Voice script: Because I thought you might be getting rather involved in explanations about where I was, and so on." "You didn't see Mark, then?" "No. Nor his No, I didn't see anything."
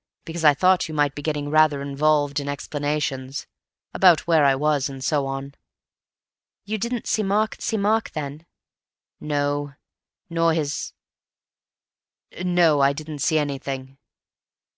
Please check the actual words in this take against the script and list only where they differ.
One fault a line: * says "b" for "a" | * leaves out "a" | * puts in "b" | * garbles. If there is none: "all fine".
* puts in "see Mark"